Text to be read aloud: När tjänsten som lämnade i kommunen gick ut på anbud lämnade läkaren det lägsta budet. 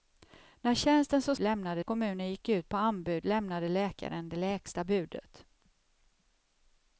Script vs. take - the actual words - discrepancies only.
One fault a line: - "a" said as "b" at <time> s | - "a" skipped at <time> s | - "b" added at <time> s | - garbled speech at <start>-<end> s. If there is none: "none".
none